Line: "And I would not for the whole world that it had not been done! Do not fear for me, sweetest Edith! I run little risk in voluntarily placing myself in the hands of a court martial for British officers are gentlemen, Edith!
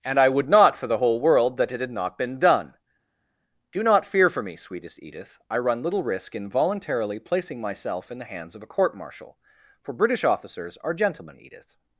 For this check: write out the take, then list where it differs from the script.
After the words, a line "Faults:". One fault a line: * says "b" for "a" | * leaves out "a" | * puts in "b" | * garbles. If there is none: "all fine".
"And I would not for the whole world that it had not been done! Do not fear for me, sweetest Edith! I run little risk in voluntarily placing myself in the hands of a court martial for British officers are gentlemen, Edith!
Faults:
all fine